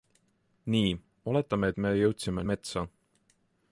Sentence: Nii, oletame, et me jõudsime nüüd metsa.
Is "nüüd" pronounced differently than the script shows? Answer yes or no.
yes